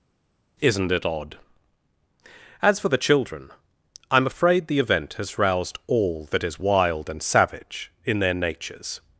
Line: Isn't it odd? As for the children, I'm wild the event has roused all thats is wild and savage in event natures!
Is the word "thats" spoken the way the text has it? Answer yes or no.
no